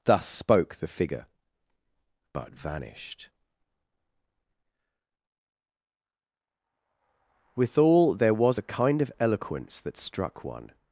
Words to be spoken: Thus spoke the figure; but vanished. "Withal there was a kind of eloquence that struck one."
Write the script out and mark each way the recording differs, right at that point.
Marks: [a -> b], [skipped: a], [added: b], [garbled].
Thus spoke the figure; but vanished. "Withal there was a kind of eloquence that struck one."